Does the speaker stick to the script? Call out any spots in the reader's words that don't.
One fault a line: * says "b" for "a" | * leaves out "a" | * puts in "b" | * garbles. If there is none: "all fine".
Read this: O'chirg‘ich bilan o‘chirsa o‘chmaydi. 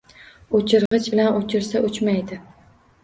all fine